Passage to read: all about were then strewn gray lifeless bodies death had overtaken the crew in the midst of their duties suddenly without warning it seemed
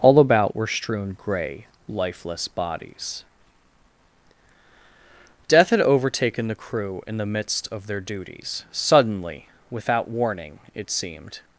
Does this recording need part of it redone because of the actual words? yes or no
yes